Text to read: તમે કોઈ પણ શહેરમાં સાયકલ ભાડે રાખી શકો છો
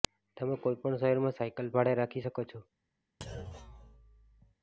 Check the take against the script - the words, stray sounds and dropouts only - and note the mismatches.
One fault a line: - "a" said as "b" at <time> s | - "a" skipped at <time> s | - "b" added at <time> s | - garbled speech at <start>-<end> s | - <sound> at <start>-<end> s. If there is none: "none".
- thud at 3.2-4.6 s